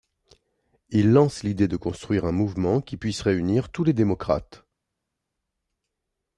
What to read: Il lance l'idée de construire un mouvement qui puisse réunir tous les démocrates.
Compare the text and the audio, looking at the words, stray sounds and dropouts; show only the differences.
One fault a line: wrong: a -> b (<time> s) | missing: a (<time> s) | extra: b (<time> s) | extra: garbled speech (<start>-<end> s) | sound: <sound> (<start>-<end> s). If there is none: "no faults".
no faults